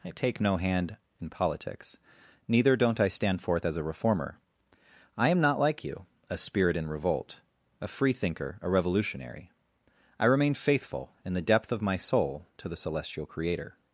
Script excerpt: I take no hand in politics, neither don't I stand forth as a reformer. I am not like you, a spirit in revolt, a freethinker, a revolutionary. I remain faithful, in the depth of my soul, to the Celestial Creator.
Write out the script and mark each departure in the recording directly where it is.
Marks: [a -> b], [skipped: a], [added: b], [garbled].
I take no hand in politics, neither don't I stand forth as a reformer. I am not like you, a spirit in revolt, a freethinker, a revolutionary. I remain faithful, in the depth of my soul, to the Celestial Creator.